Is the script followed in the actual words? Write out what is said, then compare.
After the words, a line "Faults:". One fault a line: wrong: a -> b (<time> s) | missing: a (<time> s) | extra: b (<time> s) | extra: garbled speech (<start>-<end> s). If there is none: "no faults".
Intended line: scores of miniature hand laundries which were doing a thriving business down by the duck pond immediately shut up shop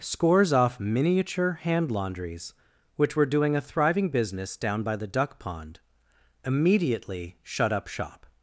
scores off miniature hand laundries which were doing a thriving business down by the duck pond immediately shut up shop
Faults:
wrong: of -> off (0.5 s)